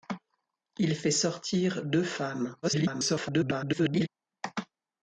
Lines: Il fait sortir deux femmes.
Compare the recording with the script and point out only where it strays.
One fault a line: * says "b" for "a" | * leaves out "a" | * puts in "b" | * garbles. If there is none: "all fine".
* garbles